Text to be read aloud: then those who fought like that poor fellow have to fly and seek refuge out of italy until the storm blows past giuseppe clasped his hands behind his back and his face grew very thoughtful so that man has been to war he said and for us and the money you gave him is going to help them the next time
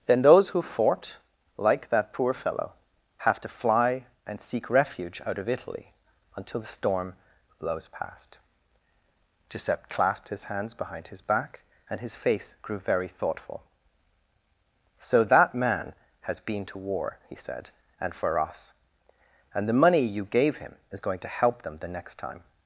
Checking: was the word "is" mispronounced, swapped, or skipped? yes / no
no